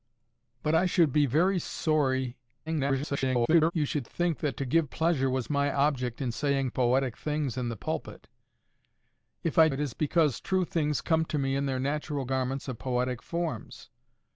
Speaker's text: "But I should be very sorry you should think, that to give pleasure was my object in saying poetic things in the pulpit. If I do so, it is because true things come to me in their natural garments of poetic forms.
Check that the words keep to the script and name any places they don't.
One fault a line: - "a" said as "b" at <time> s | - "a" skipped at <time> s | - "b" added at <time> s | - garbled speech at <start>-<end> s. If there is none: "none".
- garbled speech at 2.7-3.7 s
- "do so" skipped at 9.7 s